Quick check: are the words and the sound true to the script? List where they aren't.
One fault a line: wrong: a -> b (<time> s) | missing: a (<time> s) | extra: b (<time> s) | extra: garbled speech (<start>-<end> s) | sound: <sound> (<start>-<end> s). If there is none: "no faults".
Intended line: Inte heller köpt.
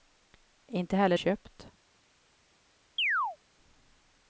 sound: chirp (3.0-3.4 s)